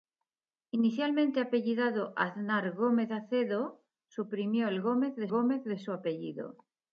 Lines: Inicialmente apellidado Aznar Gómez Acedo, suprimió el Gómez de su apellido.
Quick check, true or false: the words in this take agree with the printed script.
false